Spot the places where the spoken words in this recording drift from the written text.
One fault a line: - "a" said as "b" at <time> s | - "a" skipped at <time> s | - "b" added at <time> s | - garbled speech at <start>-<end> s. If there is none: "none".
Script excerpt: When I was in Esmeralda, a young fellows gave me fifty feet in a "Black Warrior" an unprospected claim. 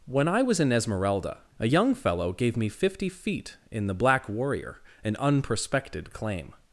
- "fellows" said as "fellow" at 1.9 s
- "a" said as "the" at 3.9 s